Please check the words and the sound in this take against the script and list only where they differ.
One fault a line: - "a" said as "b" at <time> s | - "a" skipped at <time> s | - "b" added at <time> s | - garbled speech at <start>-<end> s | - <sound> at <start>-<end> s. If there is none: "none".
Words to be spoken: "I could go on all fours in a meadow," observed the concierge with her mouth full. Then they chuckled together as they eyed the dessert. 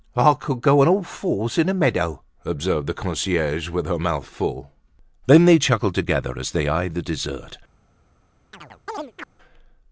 - chirp at 8.5-9.3 s